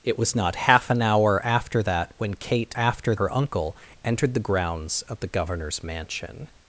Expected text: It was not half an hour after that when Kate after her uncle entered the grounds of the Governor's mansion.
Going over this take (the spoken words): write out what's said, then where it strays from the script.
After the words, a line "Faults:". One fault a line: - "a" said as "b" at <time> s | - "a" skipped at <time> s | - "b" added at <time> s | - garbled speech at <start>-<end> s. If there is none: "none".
It was not half an hour after that when Kate after her uncle entered the grounds of the Governor's mansion.
Faults:
none